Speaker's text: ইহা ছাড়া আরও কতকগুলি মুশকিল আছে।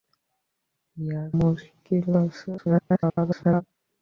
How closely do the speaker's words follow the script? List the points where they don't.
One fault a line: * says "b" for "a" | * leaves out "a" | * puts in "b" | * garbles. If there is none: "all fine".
* leaves out "ছাড়া আরও কতকগুলি"
* garbles